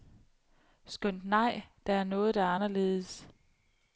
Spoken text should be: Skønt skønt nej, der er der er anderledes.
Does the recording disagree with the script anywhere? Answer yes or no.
yes